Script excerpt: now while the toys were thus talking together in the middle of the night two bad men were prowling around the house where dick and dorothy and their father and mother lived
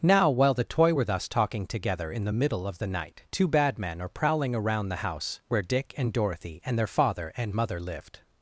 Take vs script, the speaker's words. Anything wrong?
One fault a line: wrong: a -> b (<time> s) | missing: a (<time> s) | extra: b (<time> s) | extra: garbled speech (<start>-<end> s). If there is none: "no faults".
wrong: toys -> toy (0.6 s)
wrong: were -> are (4.0 s)